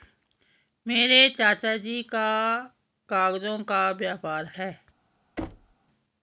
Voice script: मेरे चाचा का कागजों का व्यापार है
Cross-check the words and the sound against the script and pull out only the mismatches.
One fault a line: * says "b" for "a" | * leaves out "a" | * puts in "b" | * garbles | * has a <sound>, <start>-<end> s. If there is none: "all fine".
* puts in "जी"
* has a thud, 5.4-5.7 s